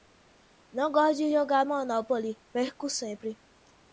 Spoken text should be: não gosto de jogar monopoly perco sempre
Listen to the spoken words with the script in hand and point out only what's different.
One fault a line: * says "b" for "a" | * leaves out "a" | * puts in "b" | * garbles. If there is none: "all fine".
all fine